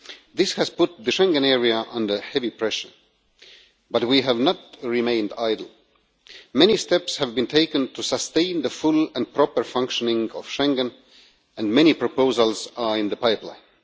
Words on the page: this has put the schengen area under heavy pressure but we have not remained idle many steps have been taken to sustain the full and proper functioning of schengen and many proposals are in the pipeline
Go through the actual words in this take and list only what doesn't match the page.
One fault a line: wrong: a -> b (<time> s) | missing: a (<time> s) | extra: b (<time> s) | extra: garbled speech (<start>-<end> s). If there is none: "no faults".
no faults